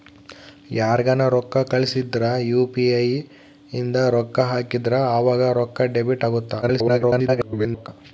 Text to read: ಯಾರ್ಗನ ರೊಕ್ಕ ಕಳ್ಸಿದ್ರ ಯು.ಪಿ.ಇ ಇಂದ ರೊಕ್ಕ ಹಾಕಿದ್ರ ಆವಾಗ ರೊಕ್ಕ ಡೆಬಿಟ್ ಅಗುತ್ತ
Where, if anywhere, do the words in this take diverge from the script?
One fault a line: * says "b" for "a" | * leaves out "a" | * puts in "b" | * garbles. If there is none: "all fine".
* garbles